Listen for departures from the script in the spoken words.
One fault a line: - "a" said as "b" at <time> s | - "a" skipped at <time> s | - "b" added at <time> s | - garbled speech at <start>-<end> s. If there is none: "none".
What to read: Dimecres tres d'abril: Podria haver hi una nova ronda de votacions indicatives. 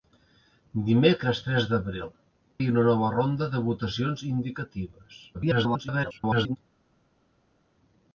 - "Podria haver" skipped at 2.1 s
- garbled speech at 5.3-6.6 s